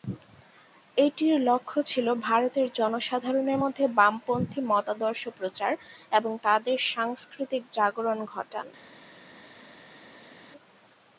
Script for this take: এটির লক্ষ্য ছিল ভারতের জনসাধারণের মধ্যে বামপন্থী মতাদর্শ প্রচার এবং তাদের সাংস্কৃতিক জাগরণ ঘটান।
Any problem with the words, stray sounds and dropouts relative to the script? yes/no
no